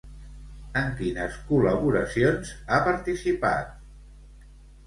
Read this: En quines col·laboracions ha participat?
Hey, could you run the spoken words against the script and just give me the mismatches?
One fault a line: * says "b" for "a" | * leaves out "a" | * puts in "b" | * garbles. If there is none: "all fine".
all fine